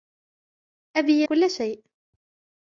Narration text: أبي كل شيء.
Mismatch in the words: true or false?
false